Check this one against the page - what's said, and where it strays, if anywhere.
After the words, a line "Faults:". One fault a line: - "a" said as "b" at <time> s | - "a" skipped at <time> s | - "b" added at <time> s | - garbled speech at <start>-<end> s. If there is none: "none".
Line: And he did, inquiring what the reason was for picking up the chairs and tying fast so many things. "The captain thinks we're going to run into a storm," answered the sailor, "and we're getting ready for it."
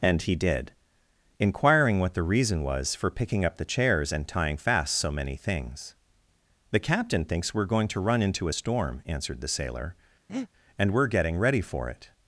And he did, inquiring what the reason was for picking up the chairs and tying fast so many things. "The captain thinks we're going to run into a storm," answered the sailor, "and we're getting ready for it."
Faults:
none